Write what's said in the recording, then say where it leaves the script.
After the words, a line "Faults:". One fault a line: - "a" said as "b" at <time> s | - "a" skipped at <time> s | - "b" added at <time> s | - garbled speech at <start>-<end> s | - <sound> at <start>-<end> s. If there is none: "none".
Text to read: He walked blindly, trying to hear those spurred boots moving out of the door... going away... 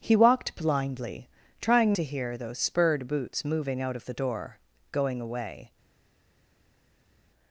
He walked blindly, trying to hear those spurred boots moving out of the door... going away...
Faults:
none